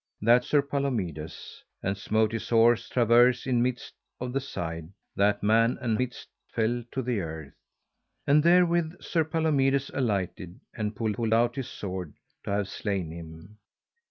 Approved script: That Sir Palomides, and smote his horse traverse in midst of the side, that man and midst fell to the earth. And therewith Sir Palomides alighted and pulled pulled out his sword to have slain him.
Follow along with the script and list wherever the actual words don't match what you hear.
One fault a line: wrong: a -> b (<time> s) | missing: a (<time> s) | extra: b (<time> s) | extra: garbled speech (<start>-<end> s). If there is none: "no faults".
no faults